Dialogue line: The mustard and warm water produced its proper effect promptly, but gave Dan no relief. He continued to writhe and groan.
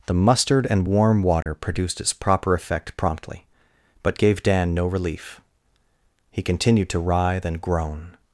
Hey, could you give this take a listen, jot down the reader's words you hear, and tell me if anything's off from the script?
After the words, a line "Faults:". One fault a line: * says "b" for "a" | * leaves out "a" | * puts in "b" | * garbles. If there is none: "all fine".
The mustard and warm water produced its proper effect promptly, but gave Dan no relief. He continued to writhe and groan.
Faults:
all fine